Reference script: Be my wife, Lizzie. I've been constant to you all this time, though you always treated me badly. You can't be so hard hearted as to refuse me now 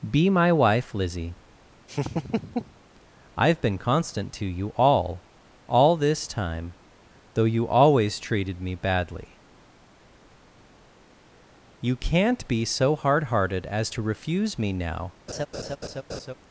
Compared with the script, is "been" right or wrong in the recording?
right